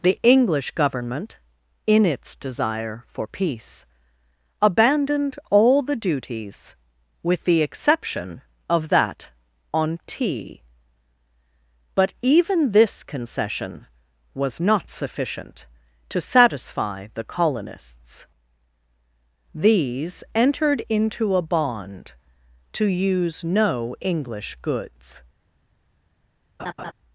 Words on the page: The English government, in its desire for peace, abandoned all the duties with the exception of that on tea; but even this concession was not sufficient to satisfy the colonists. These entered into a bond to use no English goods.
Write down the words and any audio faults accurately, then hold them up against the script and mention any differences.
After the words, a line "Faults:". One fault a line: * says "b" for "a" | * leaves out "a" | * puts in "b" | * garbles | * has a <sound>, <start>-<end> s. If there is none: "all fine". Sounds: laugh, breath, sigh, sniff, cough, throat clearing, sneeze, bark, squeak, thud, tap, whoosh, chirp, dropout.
The English government, in its desire for peace, abandoned all the duties with the exception of that on tea; but even this concession was not sufficient to satisfy the colonists. These entered into a bond to use no English goods.
Faults:
* has a laugh, 26.6-26.9 s